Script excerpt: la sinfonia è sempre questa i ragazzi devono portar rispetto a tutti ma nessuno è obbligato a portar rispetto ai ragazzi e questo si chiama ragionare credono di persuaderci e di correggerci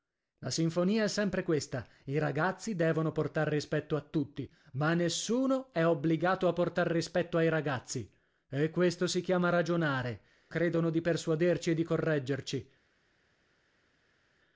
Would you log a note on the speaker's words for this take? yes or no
no